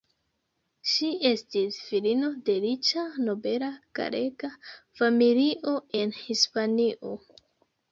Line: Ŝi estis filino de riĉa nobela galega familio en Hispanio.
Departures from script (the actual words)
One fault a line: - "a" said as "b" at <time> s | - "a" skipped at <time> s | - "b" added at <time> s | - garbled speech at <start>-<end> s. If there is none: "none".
none